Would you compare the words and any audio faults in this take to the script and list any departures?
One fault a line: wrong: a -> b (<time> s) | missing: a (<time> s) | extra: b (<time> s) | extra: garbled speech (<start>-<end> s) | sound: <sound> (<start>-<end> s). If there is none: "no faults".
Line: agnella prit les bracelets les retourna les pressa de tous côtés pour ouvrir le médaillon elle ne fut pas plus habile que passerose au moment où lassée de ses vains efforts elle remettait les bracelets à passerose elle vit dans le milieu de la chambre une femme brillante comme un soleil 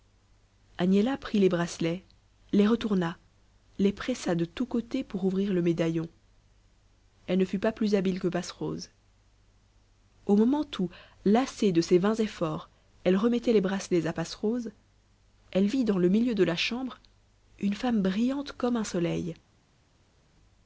no faults